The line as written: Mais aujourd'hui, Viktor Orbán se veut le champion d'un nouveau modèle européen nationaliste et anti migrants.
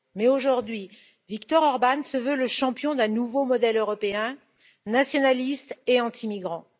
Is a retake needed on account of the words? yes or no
no